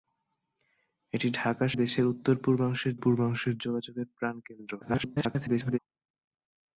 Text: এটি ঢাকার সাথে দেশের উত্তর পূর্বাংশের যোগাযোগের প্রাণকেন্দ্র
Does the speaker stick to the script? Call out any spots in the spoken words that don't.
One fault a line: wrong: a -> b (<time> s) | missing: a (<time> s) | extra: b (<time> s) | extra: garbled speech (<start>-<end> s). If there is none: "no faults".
missing: সাথে (1.7 s)
extra: পূর্বাংশের (3.0 s)
extra: garbled speech (4.8-5.8 s)